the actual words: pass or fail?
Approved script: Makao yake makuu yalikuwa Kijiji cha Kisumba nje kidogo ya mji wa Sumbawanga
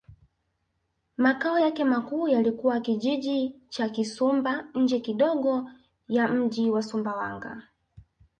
pass